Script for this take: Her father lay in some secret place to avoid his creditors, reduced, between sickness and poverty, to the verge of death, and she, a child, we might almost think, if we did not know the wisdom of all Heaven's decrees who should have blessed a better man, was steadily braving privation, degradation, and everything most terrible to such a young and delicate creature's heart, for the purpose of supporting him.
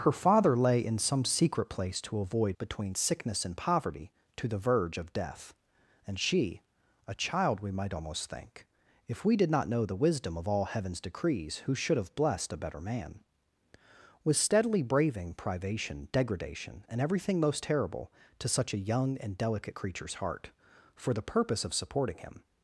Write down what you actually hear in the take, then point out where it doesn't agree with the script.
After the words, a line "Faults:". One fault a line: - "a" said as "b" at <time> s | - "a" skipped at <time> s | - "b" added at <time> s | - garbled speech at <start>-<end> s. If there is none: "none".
Her father lay in some secret place to avoid between sickness and poverty, to the verge of death, and she, a child, we might almost think, if we did not know the wisdom of all Heaven's decrees who should have blessed a better man, was steadily braving privation, degradation, and everything most terrible to such a young and delicate creature's heart, for the purpose of supporting him.
Faults:
- "his creditors reduced" skipped at 2.6 s